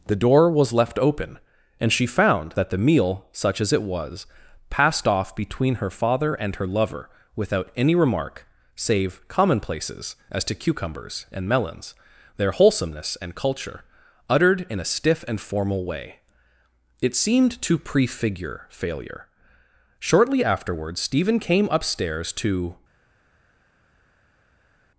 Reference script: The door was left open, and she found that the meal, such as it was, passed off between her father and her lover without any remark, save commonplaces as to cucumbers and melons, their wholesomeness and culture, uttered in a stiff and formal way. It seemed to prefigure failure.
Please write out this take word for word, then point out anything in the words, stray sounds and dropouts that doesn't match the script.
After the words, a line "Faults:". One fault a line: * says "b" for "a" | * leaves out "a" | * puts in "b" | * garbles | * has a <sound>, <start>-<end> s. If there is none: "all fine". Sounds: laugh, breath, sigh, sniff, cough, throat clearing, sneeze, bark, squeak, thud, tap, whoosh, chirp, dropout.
The door was left open, and she found that the meal, such as it was, passed off between her father and her lover without any remark, save commonplaces as to cucumbers and melons, their wholesomeness and culture, uttered in a stiff and formal way. It seemed to prefigure failure. Shortly afterwards Stephen came upstairs to
Faults:
* puts in "Shortly afterwards Stephen came upstairs to"